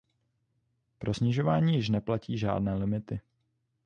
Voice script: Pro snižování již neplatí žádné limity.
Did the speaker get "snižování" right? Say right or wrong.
right